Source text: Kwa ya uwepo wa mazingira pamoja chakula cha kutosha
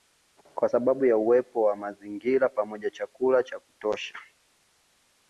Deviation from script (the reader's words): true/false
true